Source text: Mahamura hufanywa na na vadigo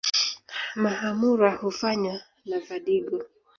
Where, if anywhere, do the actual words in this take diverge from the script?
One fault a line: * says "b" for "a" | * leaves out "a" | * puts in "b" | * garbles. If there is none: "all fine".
* leaves out "na"